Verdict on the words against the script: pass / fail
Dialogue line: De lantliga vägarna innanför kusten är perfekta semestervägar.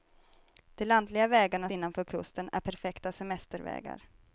pass